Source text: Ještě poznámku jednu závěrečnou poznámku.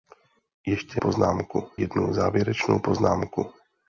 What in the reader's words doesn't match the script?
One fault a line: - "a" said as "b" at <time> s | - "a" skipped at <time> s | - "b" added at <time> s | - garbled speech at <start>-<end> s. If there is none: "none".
none